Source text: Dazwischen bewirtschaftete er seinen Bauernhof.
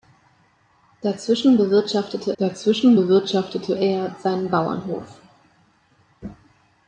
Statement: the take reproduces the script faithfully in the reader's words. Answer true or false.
false